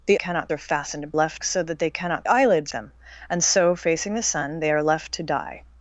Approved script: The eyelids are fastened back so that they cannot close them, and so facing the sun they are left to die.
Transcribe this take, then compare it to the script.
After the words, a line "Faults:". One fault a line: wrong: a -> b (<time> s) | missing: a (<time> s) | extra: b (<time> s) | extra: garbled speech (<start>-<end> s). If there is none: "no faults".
The cannot are fastened left so that they cannot eyelids them, and so facing the sun they are left to die.
Faults:
wrong: eyelids -> cannot (0.1 s)
wrong: back -> left (1.1 s)
wrong: close -> eyelids (2.3 s)